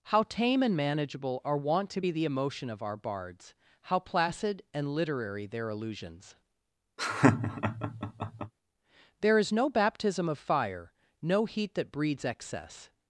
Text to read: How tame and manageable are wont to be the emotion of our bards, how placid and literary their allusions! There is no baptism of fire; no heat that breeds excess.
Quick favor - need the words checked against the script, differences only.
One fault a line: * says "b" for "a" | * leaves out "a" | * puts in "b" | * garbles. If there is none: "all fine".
all fine